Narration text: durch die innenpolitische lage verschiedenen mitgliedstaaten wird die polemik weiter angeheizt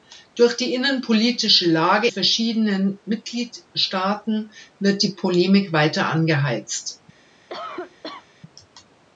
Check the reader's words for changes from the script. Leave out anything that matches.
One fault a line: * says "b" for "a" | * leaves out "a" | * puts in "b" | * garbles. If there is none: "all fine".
all fine